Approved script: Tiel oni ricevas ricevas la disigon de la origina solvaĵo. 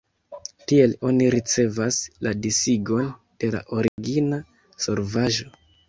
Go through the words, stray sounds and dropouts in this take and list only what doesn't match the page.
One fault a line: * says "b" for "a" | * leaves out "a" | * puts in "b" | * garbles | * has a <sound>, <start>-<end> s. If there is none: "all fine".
* leaves out "ricevas"
* has a dropout, 3.9-4.0 s